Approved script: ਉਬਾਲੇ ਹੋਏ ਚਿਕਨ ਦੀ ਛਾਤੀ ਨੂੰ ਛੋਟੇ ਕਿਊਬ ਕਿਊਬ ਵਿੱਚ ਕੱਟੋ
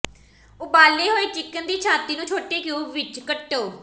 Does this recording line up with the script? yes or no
no